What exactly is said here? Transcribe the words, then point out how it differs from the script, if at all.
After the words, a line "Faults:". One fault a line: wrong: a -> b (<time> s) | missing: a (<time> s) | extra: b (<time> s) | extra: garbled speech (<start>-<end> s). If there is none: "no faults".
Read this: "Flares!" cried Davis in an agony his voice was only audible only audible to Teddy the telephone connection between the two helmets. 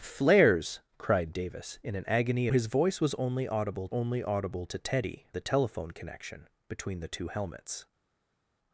"Flares!" cried Davis in an agony his voice was only audible only audible to Teddy the telephone connection between the two helmets.
Faults:
no faults